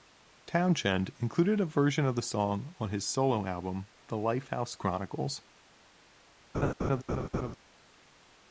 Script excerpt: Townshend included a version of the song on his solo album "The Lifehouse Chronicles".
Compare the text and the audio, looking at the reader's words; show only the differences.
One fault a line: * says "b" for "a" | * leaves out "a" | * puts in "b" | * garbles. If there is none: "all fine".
all fine